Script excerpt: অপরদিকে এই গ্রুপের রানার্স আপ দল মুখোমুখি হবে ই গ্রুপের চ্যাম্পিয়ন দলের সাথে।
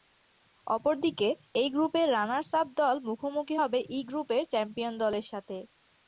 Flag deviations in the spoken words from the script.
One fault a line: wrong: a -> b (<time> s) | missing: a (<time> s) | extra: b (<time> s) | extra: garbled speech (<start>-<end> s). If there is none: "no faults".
no faults